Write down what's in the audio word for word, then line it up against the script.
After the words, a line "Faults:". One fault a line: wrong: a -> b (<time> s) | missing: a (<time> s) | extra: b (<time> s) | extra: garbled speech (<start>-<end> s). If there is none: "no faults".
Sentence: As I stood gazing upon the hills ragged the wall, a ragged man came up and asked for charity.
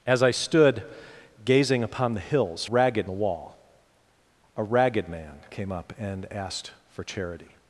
As I stood gazing upon the hills ragged the wall, a ragged man came up and asked for charity.
Faults:
no faults